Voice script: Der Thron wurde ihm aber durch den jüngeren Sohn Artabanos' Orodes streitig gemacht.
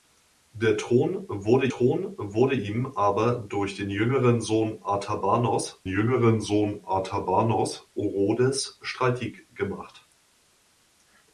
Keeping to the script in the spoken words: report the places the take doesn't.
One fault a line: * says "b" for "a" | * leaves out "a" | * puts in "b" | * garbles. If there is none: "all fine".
* puts in "Thron wurde"
* puts in "jüngeren Sohn Artabanos"